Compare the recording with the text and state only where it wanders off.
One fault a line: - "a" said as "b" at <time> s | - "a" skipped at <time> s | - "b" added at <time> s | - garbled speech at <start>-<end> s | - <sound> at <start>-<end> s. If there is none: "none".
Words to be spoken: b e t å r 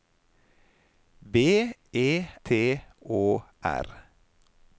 none